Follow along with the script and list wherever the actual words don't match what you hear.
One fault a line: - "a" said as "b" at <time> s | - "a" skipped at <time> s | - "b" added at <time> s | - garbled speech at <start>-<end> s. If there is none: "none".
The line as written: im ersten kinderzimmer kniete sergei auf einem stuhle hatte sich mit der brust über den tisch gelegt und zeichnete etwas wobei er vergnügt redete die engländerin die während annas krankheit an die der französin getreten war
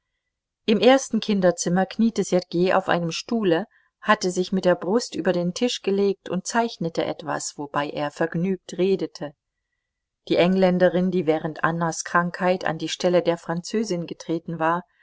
- "stelle" added at 12.9 s